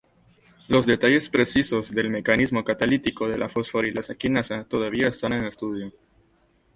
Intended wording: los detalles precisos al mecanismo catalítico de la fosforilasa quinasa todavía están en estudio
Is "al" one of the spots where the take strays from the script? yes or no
yes